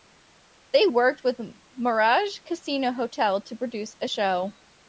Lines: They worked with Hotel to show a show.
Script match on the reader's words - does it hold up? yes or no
no